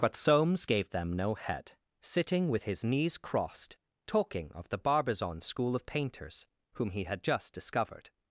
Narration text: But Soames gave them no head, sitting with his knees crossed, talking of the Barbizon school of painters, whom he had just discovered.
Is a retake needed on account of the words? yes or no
no